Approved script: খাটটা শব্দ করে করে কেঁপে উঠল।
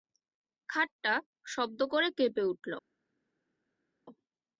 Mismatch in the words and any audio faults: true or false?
true